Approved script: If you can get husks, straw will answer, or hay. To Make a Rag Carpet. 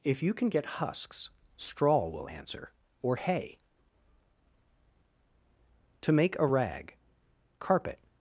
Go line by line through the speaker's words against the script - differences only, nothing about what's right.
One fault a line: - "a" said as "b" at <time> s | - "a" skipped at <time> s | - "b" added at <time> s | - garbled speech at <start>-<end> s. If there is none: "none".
none